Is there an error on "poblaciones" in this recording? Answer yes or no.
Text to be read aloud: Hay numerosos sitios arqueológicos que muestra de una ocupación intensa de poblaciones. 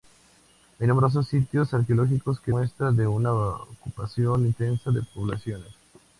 no